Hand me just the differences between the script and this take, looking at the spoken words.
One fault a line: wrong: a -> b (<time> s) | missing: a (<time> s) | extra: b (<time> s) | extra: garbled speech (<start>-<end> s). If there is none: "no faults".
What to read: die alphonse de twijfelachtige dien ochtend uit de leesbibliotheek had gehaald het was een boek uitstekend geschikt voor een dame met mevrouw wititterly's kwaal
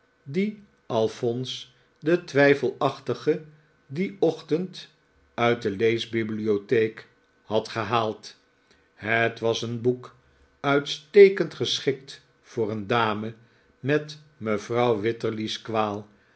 no faults